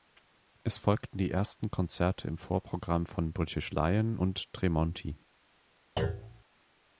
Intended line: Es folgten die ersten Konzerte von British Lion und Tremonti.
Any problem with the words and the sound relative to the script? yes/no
yes